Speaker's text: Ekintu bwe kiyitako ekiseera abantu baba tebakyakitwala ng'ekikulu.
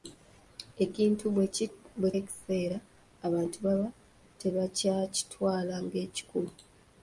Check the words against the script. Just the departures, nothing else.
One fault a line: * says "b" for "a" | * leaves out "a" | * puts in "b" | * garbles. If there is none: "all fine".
* leaves out "kiyitako"